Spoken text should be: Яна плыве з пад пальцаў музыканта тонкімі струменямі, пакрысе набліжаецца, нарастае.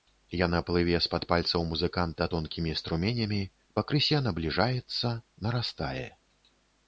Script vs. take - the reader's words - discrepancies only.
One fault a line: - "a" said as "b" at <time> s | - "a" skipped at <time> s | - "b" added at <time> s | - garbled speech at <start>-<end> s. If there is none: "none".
none